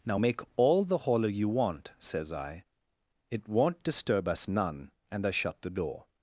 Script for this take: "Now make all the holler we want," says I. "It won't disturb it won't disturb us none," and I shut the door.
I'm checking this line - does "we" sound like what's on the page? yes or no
no